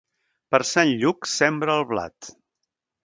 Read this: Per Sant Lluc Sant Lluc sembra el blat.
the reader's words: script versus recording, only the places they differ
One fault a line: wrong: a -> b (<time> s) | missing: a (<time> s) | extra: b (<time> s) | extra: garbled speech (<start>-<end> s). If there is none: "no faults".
missing: Sant Lluc (1.3 s)